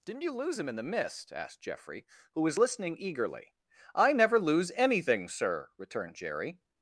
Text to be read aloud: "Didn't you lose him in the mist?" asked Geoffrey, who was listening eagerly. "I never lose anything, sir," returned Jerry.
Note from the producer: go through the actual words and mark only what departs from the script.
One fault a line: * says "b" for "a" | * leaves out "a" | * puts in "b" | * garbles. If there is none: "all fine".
all fine